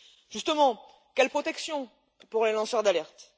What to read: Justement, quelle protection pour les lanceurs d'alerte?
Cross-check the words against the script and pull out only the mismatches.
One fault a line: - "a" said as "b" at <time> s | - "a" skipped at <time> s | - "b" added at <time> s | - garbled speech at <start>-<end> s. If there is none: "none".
none